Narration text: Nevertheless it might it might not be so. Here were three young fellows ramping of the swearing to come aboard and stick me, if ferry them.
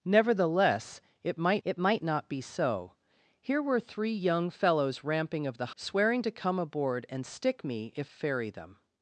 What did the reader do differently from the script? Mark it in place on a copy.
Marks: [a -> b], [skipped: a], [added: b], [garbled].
Nevertheless it might it might not be so. Here were three young fellows ramping of the swearing to come aboard and stick me, if ferry them.